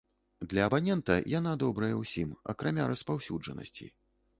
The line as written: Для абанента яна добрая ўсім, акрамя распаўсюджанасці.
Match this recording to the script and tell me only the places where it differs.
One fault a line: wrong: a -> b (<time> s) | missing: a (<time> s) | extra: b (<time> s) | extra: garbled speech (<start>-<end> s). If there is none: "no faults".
no faults